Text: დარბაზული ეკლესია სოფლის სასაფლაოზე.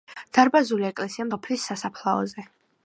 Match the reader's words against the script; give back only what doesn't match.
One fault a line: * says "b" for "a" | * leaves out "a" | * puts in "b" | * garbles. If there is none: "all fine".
all fine